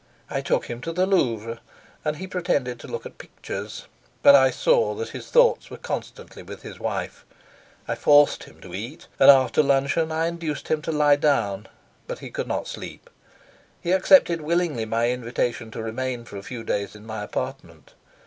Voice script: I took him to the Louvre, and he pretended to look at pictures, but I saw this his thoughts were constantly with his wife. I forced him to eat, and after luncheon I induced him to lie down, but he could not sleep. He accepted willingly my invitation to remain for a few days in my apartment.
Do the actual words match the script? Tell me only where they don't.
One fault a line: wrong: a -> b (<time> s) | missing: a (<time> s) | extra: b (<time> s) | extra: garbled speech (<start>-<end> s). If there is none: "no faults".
wrong: this -> that (4.9 s)